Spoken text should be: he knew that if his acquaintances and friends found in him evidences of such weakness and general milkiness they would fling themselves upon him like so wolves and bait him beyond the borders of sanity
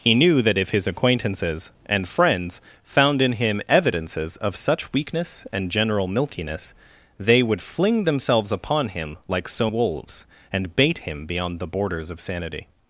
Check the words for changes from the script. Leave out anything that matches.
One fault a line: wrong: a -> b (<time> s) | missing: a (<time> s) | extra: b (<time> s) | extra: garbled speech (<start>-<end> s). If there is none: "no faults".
no faults